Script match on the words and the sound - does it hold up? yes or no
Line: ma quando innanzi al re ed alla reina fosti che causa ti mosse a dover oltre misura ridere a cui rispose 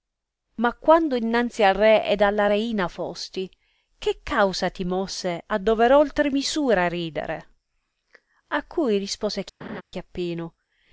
no